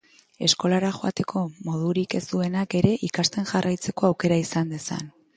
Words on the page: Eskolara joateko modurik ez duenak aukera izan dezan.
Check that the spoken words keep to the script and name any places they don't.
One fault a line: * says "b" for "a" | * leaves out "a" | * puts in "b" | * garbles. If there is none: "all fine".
* puts in "ere ikasten jarraitzeko"